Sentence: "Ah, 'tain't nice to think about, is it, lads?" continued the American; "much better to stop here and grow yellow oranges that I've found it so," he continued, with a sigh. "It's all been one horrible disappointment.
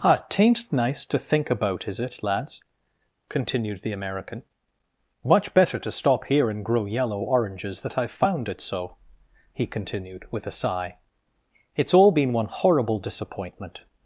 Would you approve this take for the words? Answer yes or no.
yes